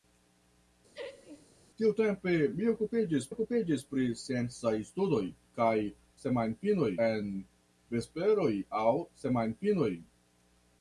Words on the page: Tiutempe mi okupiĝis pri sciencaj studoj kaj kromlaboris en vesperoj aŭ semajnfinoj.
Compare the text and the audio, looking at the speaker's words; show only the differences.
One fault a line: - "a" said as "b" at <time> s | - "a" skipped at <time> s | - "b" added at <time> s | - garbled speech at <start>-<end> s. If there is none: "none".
- "okupiĝis" added at 3.3 s
- "kromlaboris" said as "semajnfinoj" at 6.3 s